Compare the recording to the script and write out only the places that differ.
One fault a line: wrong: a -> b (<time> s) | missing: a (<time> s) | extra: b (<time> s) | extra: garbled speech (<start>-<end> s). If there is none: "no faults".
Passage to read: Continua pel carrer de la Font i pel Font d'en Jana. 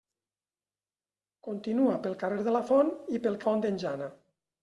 no faults